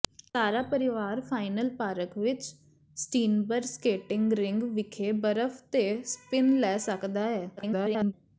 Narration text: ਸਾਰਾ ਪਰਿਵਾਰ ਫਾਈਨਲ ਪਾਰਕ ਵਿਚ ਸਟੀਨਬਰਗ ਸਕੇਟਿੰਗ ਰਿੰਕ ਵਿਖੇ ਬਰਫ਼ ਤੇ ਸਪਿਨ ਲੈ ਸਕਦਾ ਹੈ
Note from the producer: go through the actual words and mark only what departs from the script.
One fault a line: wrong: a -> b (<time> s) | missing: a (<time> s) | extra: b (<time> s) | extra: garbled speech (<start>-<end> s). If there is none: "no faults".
extra: garbled speech (7.6-8.1 s)